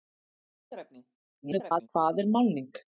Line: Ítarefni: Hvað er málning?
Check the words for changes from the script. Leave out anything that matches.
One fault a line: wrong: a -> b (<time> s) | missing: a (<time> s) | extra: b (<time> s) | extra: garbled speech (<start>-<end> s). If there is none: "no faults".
extra: garbled speech (1.4-1.9 s)